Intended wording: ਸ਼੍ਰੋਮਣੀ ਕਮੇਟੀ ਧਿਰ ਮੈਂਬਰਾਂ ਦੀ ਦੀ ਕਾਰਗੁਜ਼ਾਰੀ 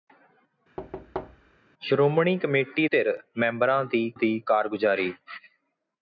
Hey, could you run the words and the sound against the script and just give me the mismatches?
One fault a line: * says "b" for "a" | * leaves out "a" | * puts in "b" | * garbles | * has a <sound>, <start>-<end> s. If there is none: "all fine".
* has a thud, 0.8-1.6 s